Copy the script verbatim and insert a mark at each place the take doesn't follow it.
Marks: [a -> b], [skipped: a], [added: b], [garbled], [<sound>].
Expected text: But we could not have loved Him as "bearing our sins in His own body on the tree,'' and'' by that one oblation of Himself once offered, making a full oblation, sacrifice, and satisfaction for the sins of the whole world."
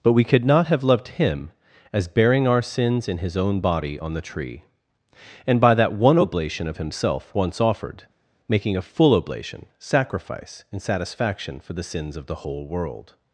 But we could not have loved Him as "bearing our sins in His own body on the tree,'' and'' by that one oblation of Himself once offered, making a full oblation, sacrifice, and satisfaction for the sins of the whole world."